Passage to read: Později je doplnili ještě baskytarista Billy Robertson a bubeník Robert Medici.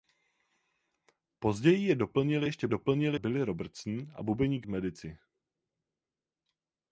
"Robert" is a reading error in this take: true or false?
true